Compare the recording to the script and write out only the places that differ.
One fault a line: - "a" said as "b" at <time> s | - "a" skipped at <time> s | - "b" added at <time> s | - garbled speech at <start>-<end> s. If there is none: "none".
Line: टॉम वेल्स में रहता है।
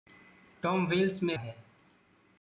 - "रहता" skipped at 1.4 s